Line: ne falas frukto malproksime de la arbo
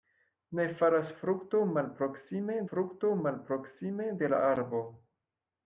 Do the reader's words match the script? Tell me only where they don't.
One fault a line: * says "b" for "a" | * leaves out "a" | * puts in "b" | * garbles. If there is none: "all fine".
* puts in "frukto malproksime"